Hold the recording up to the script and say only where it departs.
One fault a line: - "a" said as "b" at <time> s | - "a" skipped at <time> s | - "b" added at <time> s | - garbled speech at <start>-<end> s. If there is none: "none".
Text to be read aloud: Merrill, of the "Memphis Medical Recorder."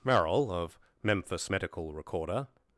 - "the" skipped at 0.8 s